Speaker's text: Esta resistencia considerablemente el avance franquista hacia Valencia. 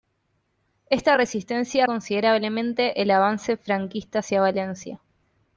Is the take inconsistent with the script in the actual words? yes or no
no